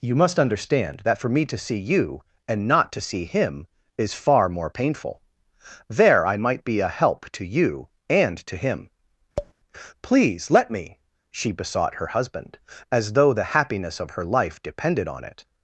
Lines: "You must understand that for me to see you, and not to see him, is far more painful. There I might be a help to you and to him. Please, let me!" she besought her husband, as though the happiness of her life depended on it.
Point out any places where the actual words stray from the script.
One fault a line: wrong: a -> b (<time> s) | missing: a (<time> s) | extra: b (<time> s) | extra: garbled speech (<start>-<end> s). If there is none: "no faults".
no faults